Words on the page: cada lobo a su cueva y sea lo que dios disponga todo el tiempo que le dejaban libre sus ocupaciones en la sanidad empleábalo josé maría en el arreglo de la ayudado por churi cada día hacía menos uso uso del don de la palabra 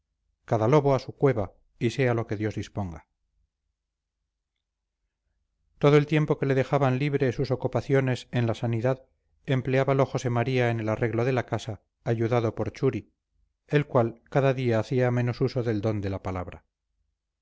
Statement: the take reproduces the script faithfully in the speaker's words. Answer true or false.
false